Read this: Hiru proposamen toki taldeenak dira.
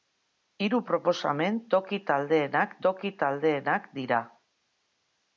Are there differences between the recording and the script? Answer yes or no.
yes